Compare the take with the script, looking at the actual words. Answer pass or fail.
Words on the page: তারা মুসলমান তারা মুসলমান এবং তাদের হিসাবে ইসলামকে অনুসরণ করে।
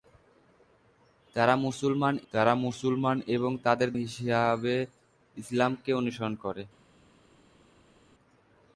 pass